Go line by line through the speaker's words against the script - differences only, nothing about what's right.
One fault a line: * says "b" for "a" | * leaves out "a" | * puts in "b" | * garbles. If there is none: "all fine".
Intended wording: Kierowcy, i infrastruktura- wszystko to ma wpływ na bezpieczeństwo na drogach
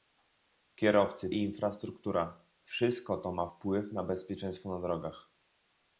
all fine